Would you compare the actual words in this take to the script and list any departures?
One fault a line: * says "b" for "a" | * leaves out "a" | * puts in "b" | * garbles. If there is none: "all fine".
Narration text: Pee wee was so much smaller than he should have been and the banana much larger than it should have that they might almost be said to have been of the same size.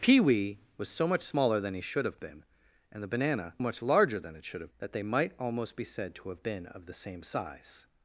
all fine